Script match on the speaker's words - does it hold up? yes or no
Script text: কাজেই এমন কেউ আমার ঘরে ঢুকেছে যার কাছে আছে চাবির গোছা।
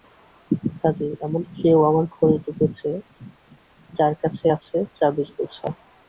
yes